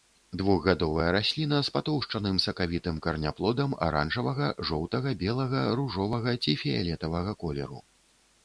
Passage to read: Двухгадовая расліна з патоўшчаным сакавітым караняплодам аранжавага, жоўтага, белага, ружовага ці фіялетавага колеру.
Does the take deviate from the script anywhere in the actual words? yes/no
no